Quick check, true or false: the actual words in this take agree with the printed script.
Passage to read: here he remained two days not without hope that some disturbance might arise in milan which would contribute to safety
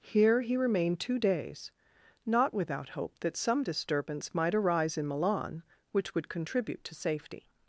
true